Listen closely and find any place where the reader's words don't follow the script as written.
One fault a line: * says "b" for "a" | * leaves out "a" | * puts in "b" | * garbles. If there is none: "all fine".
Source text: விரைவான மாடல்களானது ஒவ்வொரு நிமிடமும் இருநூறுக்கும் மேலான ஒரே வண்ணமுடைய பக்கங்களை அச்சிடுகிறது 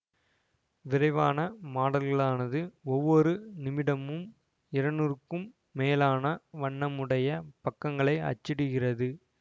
* leaves out "ஒரே"